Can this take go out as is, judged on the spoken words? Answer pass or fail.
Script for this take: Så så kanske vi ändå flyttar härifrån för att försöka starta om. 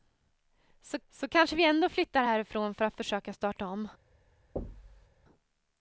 pass